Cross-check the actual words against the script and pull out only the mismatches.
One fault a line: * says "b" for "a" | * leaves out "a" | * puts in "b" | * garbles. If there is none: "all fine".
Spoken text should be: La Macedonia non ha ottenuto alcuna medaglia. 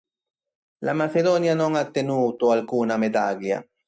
all fine